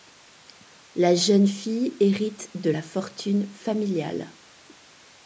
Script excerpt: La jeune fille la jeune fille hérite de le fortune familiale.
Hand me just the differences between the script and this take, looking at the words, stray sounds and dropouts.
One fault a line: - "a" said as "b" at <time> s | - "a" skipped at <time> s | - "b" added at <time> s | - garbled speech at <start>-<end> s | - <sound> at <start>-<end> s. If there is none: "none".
- "la jeune fille" skipped at 1.9 s
- "le" said as "la" at 2.7 s